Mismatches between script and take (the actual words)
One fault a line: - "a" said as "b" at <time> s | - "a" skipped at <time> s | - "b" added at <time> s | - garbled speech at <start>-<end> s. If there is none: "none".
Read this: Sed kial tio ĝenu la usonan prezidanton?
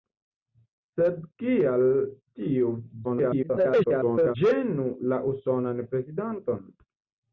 - garbled speech at 3.0-4.4 s